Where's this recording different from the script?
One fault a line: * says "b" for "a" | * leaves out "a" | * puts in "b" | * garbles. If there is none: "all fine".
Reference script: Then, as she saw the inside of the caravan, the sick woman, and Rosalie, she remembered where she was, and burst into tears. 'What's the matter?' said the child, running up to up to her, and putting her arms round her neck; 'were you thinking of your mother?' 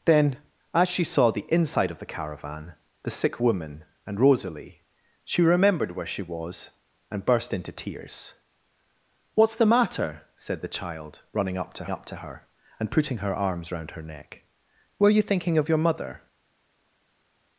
all fine